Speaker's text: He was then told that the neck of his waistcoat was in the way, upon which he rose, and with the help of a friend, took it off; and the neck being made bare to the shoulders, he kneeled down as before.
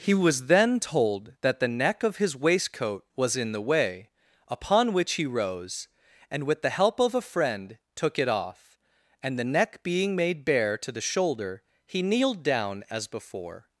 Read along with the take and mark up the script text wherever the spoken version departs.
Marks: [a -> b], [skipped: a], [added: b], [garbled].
He was then told that the neck of his waistcoat was in the way, upon which he rose, and with the help of a friend, took it off; and the neck being made bare to the [shoulders, -> shoulder] he kneeled down as before.